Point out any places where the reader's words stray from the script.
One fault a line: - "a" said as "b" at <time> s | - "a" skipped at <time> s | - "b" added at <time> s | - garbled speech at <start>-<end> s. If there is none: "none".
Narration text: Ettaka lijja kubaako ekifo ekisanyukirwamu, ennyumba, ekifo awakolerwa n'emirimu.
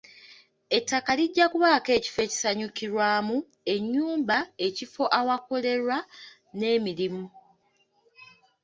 none